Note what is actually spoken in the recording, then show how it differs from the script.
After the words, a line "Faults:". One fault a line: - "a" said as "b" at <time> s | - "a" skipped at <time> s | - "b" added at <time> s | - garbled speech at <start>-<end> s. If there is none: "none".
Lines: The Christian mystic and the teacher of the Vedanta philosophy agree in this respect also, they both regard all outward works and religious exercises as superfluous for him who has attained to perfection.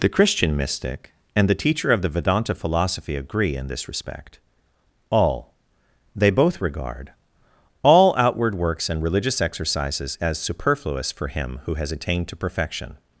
The Christian mystic and the teacher of the Vedanta philosophy agree in this respect all, they both regard all outward works and religious exercises as superfluous for him who has attained to perfection.
Faults:
- "also" said as "all" at 5.1 s